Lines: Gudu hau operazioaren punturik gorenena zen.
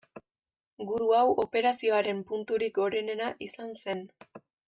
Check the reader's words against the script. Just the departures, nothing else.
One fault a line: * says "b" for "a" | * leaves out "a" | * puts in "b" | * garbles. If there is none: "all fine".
* puts in "izan"